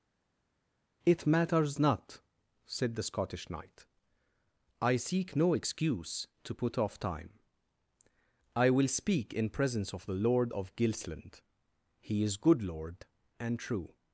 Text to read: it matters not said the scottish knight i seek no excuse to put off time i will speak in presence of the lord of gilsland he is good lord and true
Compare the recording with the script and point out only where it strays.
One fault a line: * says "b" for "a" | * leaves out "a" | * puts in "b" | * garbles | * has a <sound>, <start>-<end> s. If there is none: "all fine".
all fine